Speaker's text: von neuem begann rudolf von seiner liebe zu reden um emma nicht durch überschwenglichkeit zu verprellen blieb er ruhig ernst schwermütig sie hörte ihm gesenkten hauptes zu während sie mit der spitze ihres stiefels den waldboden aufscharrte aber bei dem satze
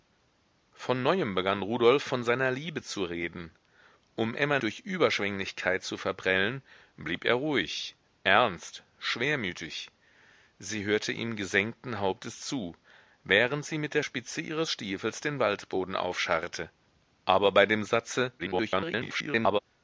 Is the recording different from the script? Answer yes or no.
yes